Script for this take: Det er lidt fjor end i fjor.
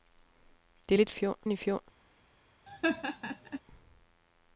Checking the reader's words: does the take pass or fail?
pass